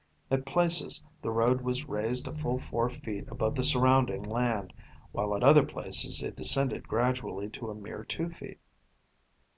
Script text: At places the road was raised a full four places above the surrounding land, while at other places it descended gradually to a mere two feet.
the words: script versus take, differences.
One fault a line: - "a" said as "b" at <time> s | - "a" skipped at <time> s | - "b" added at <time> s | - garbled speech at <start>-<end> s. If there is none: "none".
- "places" said as "feet" at 2.9 s